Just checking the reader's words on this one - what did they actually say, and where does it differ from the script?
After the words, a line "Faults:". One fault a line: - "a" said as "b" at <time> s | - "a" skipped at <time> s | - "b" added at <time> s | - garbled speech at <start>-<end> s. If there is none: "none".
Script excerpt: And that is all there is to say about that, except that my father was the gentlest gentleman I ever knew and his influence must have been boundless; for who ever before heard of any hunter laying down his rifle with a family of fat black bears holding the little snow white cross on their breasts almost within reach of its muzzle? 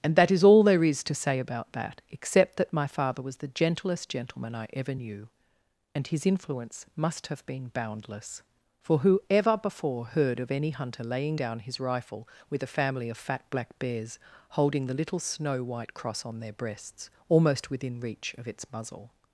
And that is all there is to say about that, except that my father was the gentlest gentleman I ever knew and his influence must have been boundless; for who ever before heard of any hunter laying down his rifle with a family of fat black bears holding the little snow white cross on their breasts almost within reach of its muzzle?
Faults:
none